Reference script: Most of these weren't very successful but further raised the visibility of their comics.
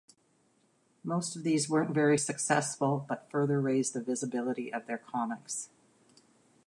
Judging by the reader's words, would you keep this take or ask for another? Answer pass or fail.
pass